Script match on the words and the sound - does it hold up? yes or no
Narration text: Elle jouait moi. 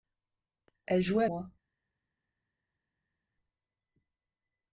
yes